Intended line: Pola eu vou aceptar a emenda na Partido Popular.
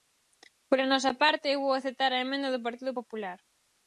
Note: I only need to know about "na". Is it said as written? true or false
false